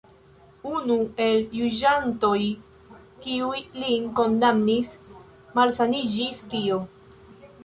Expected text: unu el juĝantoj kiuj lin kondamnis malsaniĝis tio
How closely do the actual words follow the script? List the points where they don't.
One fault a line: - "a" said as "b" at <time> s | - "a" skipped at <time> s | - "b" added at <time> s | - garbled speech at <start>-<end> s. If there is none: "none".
none